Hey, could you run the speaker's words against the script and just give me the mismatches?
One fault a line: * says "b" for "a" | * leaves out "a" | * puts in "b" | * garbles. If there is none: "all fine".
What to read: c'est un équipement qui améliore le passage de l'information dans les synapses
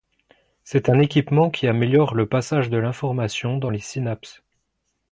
all fine